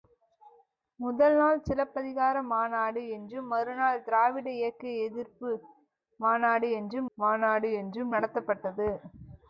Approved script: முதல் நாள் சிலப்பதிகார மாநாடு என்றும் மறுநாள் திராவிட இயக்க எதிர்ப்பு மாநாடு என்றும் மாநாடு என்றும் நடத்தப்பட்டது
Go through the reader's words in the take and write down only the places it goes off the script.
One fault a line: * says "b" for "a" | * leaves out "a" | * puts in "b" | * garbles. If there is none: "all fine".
all fine